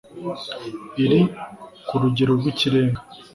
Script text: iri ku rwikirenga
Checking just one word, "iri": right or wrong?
right